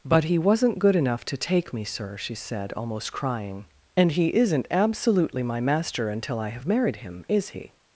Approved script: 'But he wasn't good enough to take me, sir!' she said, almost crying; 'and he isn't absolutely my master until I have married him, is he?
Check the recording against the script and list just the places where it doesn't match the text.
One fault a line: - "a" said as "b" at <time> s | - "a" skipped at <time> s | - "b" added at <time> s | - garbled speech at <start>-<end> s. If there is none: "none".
none